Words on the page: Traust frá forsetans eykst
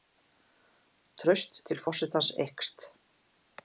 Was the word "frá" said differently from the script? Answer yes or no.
yes